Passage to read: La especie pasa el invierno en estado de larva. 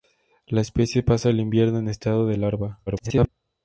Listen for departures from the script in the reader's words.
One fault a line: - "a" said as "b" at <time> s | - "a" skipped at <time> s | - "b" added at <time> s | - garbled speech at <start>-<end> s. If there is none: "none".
- garbled speech at 2.9-3.3 s